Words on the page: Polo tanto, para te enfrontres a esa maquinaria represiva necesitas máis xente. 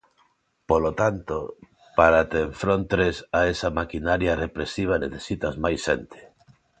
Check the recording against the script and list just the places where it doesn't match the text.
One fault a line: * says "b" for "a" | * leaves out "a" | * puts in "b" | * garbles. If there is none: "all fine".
all fine